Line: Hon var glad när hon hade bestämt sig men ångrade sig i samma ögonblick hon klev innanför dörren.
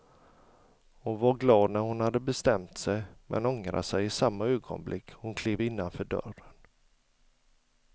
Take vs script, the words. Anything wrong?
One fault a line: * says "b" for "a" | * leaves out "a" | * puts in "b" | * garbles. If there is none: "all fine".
all fine